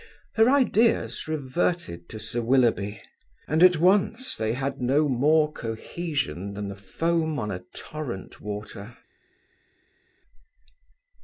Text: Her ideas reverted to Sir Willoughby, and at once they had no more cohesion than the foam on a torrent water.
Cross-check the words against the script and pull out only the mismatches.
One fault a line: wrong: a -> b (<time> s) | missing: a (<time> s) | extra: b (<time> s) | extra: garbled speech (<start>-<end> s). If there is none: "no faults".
no faults